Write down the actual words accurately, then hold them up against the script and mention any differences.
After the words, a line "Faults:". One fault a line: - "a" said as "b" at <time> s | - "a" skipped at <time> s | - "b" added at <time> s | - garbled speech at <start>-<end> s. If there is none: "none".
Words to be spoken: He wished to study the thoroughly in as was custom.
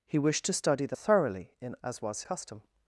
He wished to study the thoroughly in as was custom.
Faults:
none